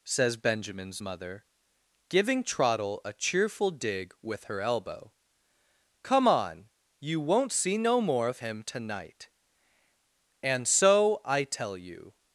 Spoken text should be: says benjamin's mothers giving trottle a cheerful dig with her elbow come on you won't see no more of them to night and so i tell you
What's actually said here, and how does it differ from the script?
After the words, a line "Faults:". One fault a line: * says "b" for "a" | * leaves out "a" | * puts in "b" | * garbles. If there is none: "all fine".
says benjamin's mother giving trottle a cheerful dig with her elbow come on you won't see no more of him to night and so i tell you
Faults:
* says "mother" for "mothers"
* says "him" for "them"